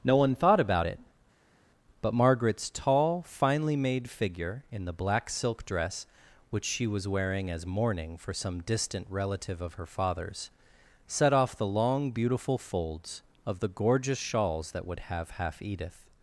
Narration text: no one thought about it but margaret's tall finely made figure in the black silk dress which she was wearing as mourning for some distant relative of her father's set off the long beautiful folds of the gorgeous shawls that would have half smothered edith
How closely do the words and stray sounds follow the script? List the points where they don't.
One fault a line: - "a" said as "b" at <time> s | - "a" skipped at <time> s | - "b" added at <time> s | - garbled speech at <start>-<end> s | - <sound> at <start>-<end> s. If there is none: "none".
- "smothered" skipped at 15.6 s